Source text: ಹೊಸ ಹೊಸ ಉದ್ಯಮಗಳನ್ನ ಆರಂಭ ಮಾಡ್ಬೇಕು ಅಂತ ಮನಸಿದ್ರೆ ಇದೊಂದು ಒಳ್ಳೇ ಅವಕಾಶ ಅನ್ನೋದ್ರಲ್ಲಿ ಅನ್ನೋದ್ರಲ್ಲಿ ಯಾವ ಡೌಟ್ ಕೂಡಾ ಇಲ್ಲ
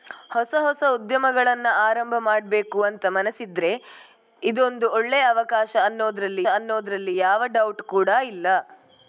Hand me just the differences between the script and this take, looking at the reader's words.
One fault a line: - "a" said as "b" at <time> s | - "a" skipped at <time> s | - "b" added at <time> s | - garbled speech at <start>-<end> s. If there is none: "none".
none